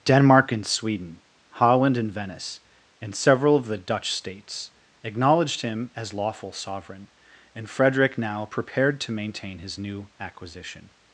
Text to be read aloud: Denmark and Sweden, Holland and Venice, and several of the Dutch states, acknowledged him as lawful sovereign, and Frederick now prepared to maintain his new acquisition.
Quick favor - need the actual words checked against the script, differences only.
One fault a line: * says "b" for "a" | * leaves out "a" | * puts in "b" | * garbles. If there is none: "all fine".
all fine